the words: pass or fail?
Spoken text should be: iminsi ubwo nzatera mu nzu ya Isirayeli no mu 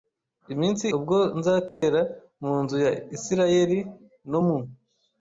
pass